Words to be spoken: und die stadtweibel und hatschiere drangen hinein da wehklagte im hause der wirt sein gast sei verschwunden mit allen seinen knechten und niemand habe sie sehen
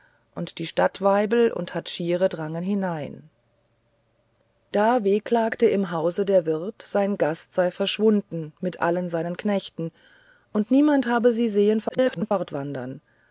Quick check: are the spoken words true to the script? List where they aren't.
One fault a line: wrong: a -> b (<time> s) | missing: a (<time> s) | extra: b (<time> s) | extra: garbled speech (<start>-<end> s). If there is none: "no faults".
extra: garbled speech (11.9-12.3 s)